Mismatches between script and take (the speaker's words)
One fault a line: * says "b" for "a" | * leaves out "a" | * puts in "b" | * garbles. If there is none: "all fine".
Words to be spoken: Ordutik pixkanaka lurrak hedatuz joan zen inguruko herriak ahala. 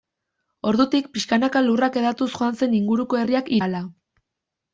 all fine